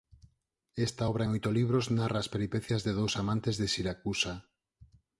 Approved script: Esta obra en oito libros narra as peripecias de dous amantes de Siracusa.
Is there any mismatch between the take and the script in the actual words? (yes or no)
no